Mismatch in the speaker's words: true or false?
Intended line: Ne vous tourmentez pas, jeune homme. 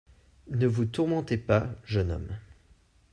false